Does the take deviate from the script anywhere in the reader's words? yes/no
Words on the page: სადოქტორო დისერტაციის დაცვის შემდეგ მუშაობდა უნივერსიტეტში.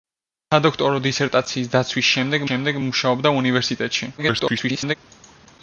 yes